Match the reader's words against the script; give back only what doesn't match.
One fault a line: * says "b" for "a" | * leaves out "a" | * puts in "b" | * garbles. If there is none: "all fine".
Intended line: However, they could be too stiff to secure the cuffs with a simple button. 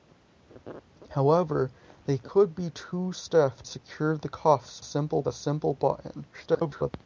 * leaves out "to"
* says "simple" for "with"
* garbles